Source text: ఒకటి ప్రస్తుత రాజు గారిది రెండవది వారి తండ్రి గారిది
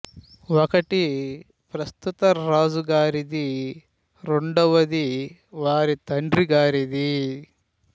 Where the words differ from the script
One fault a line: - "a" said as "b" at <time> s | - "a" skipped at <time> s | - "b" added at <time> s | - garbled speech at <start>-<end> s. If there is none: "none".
none